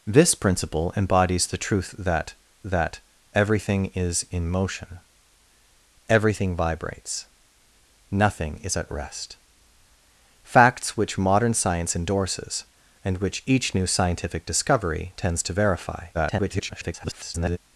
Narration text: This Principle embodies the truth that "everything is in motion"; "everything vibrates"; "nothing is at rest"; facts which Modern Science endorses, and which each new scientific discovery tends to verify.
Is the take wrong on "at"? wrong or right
right